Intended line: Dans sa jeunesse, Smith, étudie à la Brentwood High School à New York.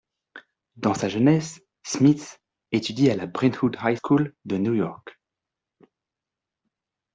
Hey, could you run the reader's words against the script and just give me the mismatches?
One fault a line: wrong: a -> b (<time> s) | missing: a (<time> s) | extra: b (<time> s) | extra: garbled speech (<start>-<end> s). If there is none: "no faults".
wrong: à -> de (4.4 s)